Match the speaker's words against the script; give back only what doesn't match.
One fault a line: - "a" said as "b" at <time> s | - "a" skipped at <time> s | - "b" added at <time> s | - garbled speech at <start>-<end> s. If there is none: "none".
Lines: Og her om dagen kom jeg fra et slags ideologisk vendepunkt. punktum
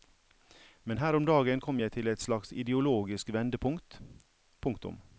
- "Og" said as "Men" at 0.8 s
- "fra" said as "til" at 1.9 s